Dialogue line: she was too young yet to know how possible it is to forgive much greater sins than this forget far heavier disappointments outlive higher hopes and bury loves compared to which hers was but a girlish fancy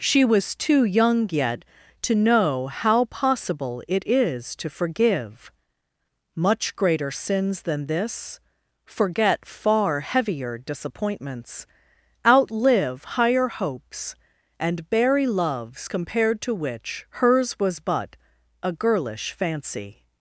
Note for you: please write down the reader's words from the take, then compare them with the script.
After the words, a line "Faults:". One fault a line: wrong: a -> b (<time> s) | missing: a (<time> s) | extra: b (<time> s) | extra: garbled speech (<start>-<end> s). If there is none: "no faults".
she was too young yet to know how possible it is to forgive much greater sins than this forget far heavier disappointments outlive higher hopes and bury loves compared to which hers was but a girlish fancy
Faults:
no faults